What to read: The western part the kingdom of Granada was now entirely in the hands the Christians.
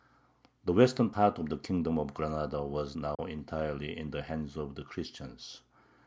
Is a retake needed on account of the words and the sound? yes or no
yes